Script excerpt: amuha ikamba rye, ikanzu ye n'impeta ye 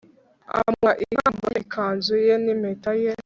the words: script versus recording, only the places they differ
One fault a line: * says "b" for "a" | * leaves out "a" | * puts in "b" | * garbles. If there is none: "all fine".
* leaves out "rye"